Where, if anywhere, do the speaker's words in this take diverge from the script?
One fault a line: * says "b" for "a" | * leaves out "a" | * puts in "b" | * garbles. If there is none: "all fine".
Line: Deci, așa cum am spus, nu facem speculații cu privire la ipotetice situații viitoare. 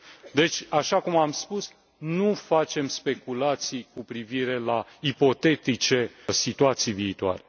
all fine